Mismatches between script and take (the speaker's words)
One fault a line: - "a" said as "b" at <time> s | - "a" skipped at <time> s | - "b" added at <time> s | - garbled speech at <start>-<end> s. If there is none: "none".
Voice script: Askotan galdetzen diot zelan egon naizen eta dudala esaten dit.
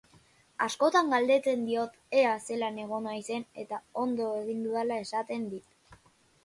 - "ea" added at 2.2 s
- "ondo egin" added at 4.1 s